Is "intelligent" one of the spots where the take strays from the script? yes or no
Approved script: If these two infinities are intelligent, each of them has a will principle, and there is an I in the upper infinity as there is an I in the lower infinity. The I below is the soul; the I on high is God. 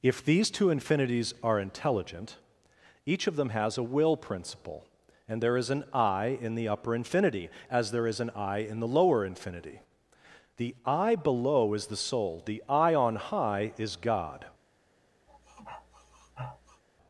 no